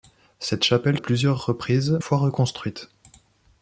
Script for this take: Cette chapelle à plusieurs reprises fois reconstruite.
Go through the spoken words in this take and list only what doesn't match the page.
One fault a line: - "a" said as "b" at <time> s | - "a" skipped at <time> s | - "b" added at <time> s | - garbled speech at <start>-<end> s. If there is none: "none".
none